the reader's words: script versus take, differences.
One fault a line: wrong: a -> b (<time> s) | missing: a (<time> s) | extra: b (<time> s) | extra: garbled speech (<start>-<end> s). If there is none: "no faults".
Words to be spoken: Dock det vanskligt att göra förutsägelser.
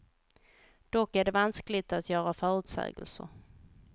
extra: är (1.1 s)